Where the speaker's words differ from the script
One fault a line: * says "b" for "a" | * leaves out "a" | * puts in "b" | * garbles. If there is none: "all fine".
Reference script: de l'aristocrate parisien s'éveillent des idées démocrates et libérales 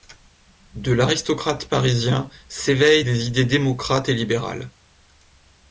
all fine